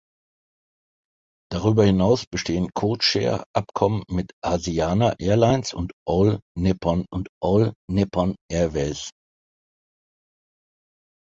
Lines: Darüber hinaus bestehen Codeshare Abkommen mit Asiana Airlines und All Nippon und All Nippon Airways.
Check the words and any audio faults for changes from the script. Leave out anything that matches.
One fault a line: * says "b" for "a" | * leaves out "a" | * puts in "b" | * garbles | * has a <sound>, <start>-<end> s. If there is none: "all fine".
all fine